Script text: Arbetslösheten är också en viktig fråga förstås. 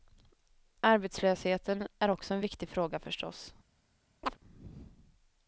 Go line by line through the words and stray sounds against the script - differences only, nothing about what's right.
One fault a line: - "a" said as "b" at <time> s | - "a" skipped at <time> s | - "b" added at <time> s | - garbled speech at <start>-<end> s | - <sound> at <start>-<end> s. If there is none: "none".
- chirp at 4.2-4.4 s